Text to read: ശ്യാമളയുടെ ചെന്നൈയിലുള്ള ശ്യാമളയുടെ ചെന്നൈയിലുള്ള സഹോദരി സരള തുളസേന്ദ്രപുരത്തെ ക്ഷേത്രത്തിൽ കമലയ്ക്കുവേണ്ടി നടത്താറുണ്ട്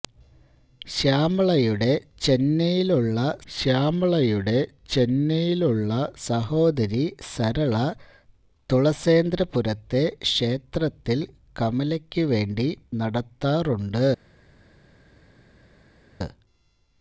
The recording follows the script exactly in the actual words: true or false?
true